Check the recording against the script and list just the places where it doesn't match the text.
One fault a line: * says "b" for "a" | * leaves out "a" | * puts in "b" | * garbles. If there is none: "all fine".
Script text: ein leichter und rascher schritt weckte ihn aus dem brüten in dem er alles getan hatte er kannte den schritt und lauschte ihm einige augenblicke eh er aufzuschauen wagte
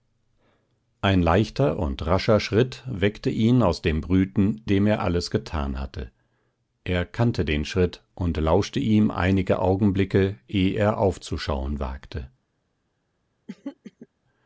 * leaves out "in"